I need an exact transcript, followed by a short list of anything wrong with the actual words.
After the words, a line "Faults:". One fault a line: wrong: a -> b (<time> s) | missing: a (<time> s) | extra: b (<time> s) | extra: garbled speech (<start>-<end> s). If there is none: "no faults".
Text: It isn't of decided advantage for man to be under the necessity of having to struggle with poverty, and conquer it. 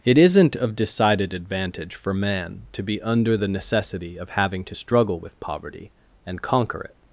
It isn't of decided advantage for man to be under the necessity of having to struggle with poverty, and conquer it.
Faults:
no faults